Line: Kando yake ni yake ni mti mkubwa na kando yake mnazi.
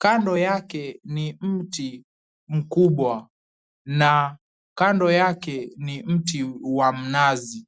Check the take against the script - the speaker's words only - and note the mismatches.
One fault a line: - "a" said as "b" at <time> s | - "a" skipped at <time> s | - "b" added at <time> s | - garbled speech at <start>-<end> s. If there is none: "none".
- "yake ni" skipped at 1.4 s
- "ni mti wa" added at 5.8 s